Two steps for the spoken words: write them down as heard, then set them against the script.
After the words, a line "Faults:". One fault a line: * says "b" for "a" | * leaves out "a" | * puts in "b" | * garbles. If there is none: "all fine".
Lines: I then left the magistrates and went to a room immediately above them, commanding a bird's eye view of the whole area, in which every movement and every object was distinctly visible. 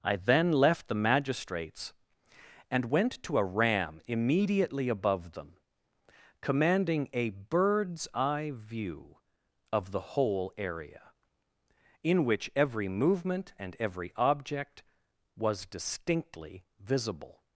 I then left the magistrates and went to a ram immediately above them, commanding a bird's eye view of the whole area, in which every movement and every object was distinctly visible.
Faults:
* says "ram" for "room"